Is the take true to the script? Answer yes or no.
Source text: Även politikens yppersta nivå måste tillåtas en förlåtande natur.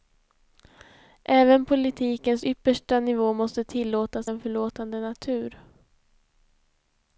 yes